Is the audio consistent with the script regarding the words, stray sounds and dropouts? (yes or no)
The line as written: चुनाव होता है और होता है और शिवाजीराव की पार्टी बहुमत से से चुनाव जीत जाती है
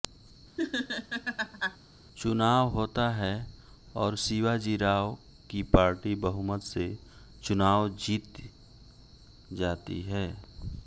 no